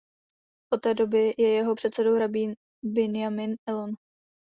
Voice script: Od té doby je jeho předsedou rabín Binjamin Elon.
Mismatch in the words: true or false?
false